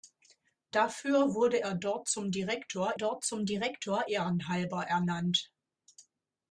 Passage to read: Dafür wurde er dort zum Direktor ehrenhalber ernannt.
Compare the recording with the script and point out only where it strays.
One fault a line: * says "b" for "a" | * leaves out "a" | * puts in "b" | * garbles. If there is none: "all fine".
* puts in "dort zum Direktor"